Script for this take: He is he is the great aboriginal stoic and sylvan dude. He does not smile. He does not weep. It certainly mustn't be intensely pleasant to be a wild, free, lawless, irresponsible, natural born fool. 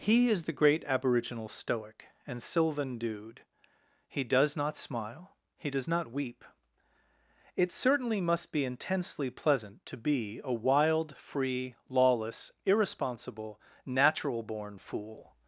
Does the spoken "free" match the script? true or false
true